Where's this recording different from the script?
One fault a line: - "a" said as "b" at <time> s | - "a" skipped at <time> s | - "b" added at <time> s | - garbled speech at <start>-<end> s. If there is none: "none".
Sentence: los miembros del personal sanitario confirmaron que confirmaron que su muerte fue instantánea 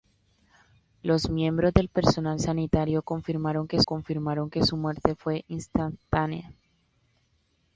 none